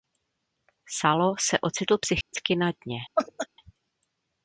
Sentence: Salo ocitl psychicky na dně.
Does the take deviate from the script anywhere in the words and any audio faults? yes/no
yes